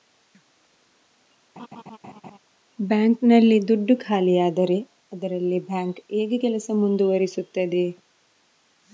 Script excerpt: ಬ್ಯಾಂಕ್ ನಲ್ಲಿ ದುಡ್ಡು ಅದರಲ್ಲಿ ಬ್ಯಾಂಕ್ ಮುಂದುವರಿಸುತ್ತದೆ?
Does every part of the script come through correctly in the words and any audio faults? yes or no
no